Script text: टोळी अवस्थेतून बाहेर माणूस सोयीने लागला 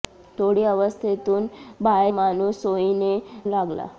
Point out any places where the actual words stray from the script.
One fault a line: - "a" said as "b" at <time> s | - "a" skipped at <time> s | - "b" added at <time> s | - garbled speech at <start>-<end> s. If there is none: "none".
none